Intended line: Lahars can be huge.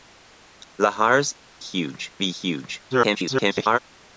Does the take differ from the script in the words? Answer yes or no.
yes